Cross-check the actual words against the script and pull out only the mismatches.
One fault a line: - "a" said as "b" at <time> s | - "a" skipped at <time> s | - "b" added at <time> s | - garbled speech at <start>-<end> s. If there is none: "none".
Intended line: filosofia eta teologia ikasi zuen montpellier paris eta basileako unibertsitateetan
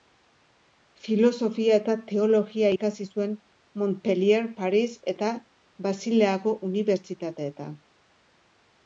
none